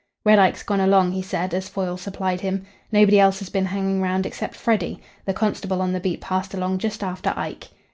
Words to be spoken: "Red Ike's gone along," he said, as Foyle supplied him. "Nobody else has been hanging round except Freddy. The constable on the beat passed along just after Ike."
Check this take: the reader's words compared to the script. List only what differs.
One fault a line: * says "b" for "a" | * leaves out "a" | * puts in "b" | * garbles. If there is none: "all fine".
all fine